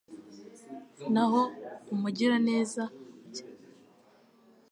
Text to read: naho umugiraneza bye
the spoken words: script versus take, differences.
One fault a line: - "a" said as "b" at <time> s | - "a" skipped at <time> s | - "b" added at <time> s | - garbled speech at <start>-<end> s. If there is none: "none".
none